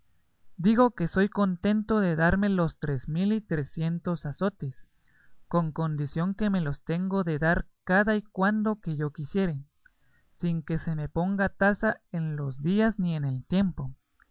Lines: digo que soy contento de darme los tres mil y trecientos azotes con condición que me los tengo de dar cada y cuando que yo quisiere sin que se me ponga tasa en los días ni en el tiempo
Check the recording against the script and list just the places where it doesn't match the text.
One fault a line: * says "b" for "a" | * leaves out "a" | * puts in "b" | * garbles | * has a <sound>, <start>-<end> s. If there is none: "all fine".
all fine